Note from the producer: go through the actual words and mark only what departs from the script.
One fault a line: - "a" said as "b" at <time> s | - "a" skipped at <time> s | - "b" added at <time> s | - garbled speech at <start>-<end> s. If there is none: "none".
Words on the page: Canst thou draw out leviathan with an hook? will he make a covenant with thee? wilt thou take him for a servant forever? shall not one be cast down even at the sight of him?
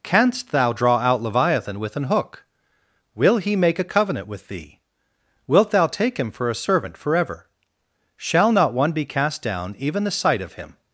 - "at" skipped at 10.0 s